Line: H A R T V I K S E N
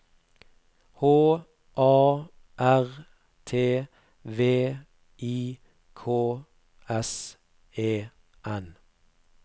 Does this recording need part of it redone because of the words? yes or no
no